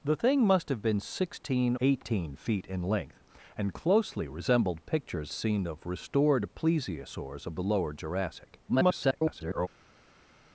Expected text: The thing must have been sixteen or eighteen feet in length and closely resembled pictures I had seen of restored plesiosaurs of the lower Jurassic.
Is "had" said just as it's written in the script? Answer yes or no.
no